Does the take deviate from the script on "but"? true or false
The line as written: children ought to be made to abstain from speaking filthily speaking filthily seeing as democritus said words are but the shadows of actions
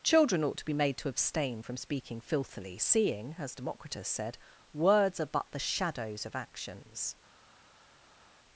false